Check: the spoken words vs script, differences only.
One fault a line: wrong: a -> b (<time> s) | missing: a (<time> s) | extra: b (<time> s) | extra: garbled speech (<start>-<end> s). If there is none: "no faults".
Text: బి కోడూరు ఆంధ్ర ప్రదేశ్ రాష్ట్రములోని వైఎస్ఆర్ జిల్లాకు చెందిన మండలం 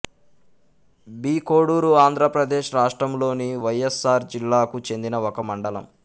extra: ఒక (5.3 s)